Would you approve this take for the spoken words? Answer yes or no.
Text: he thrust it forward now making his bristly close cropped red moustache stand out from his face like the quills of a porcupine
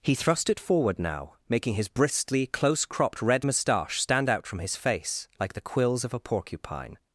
yes